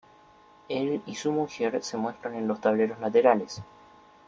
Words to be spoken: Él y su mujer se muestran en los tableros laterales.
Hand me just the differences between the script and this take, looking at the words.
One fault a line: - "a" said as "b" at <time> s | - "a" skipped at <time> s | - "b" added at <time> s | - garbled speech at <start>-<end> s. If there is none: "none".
none